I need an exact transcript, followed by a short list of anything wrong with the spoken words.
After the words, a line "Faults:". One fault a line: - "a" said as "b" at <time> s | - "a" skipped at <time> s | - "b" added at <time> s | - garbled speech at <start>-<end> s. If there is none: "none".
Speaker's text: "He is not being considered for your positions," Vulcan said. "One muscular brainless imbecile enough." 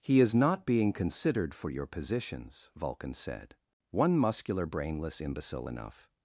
"He is not being considered for your positions," Vulcan said. "One muscular brainless imbecile enough."
Faults:
none